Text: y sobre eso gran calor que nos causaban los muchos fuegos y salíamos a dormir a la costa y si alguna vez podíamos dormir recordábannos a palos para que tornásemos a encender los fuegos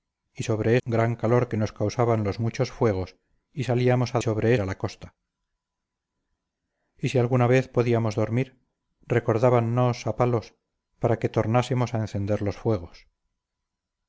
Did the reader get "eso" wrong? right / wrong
wrong